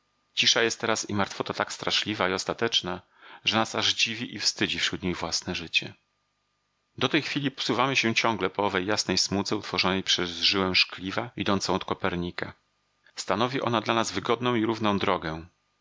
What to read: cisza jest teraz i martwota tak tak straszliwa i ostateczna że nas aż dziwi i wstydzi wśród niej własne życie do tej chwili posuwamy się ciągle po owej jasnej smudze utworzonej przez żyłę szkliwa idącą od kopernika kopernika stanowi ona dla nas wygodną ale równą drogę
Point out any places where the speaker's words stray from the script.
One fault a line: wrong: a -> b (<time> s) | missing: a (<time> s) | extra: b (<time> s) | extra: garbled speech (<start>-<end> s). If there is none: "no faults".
missing: tak (1.7 s)
missing: kopernika (12.5 s)
wrong: ale -> i (14.5 s)